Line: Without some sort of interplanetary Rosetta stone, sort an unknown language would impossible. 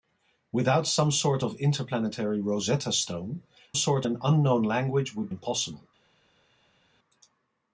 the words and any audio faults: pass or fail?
pass